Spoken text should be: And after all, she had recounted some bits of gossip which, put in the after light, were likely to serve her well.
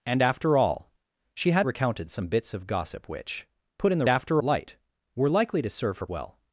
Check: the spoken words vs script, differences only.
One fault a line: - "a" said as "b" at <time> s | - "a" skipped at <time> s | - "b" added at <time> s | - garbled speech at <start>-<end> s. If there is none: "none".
none